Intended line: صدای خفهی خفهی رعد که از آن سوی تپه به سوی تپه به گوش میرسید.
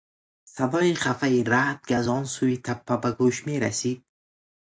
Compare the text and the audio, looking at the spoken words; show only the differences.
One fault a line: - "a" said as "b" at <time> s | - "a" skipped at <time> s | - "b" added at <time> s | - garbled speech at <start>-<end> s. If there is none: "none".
- "خفهی" skipped at 1.4 s
- "سوی تپه به" skipped at 3.1 s